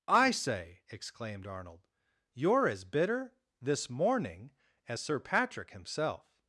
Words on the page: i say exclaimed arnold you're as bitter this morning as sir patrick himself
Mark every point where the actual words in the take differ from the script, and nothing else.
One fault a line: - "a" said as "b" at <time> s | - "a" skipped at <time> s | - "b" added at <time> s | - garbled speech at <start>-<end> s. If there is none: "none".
none